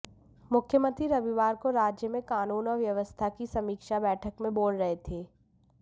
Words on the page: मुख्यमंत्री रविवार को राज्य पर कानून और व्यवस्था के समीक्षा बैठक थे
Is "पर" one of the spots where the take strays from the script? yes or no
yes